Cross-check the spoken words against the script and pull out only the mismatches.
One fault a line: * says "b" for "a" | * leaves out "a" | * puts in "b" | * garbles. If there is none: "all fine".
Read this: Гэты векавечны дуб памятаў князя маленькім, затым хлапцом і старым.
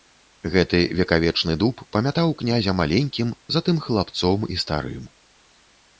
all fine